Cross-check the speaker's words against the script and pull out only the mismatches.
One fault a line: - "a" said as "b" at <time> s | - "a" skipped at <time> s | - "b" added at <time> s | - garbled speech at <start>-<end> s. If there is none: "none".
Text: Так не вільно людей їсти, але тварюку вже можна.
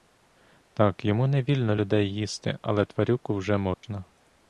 - "йому" added at 1.1 s